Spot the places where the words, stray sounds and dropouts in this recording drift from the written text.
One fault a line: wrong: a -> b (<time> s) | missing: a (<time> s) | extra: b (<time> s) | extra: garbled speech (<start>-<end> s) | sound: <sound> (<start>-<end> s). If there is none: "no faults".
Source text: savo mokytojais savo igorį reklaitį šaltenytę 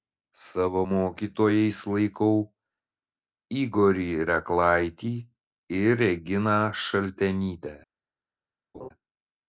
wrong: savo -> laikau (1.9 s)
extra: ir reginą (5.8 s)
sound: laugh (8.7-8.9 s)